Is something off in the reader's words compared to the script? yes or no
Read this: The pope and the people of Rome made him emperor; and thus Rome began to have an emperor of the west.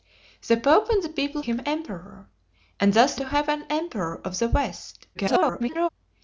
yes